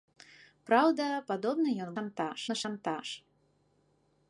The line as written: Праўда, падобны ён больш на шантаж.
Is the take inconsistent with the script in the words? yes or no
yes